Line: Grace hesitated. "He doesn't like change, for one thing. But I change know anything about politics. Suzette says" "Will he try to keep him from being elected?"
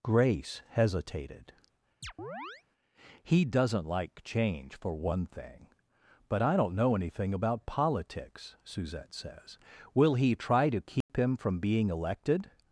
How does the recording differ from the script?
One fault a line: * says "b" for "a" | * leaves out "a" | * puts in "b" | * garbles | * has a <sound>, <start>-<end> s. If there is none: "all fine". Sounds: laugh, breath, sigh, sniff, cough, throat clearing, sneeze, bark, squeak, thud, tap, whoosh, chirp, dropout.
* has a chirp, 2.0-2.6 s
* says "don't" for "change"
* has a dropout, 11.0-11.1 s